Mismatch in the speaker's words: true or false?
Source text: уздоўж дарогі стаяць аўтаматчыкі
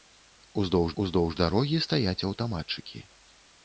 true